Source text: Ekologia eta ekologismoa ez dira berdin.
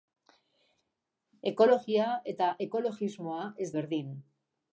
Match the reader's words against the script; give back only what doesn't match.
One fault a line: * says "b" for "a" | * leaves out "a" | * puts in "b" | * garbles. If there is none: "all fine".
* leaves out "dira"